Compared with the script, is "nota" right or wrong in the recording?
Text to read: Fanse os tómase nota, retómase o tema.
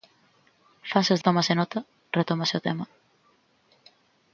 right